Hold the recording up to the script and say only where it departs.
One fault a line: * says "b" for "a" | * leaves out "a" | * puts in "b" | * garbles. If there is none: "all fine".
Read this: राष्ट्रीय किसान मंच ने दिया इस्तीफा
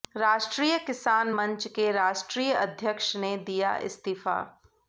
* puts in "के राष्ट्रीय अध्यक्ष"